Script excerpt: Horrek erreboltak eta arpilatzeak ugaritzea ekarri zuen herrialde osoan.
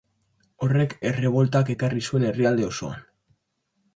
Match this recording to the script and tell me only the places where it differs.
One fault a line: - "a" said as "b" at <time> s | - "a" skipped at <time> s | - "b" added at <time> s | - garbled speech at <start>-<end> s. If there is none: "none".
- "eta arpilatzeak ugaritzea" skipped at 1.7 s